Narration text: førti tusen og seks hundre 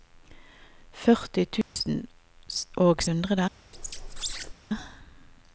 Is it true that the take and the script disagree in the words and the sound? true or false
true